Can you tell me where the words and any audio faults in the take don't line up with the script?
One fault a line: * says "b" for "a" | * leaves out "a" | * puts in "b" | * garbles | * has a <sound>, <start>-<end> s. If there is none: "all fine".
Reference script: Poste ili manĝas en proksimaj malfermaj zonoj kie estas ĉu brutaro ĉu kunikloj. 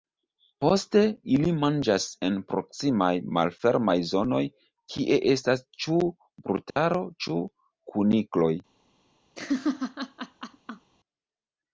* has a dropout, 6.7-6.8 s
* has a laugh, 9.4-10.9 s